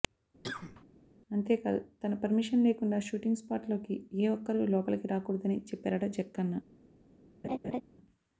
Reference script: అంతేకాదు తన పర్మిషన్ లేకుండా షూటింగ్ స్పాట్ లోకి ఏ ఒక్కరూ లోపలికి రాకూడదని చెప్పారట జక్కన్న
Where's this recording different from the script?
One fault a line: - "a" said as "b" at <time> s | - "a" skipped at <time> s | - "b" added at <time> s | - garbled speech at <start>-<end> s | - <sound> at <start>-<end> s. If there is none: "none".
- cough at 0.4-0.8 s
- laugh at 7.4-7.8 s